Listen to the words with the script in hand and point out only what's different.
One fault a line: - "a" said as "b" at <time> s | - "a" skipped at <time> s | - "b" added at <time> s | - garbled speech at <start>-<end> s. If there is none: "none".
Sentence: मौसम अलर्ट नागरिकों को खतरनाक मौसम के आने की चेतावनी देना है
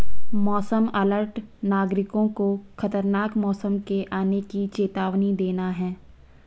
none